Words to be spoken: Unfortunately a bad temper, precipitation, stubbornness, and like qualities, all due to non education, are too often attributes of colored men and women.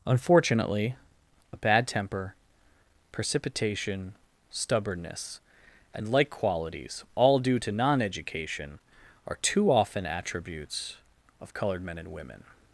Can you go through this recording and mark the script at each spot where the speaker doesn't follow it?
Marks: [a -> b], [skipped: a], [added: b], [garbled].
Unfortunately a bad temper, precipitation, stubbornness, and like qualities, all due to non education, are too often attributes of colored men and women.